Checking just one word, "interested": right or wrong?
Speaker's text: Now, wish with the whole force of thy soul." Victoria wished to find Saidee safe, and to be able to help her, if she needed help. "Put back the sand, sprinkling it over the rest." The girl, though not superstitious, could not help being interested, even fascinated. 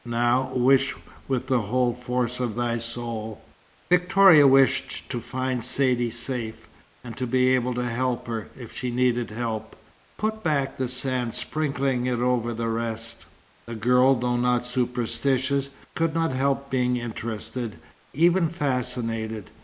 right